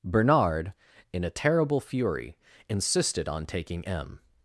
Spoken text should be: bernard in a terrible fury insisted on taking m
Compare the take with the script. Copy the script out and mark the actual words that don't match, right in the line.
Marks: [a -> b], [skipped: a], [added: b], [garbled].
bernard in a terrible fury insisted on taking m